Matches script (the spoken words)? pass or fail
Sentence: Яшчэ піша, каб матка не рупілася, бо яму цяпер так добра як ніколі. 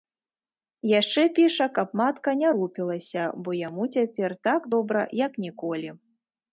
pass